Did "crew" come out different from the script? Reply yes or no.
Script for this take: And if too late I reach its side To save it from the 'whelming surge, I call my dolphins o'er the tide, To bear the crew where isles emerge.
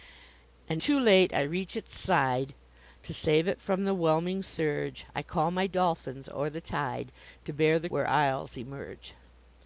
yes